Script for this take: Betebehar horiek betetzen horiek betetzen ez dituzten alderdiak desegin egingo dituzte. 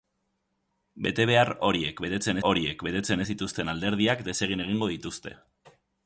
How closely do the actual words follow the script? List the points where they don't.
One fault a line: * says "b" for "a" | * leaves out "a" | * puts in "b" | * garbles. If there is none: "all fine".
all fine